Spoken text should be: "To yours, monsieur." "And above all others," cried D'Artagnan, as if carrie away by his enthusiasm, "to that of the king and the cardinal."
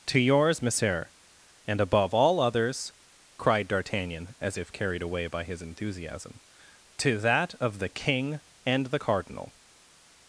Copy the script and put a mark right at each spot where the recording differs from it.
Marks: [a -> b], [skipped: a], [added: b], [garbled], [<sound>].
"To yours, monsieur." "And above all others," cried D'Artagnan, as if [carrie -> carried] away by his enthusiasm, "to that of the king and the cardinal."